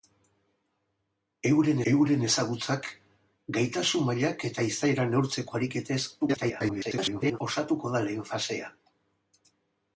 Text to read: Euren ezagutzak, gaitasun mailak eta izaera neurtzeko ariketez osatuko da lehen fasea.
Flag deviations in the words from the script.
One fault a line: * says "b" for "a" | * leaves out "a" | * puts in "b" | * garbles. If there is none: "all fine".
* puts in "euren"
* garbles